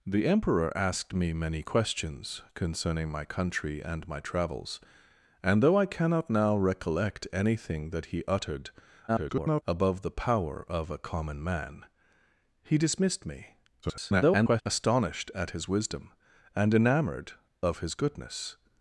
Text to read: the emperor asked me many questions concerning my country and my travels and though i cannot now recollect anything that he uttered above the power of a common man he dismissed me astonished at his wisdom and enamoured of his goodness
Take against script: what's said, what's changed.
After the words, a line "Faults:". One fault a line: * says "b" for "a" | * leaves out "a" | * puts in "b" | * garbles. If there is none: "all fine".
the emperor asked me many questions concerning my country and my travels and though i cannot now recollect anything that he uttered [garbled] above the power of a common man he dismissed me [garbled] astonished at his wisdom and enamoured of his goodness
Faults:
* garbles
* garbles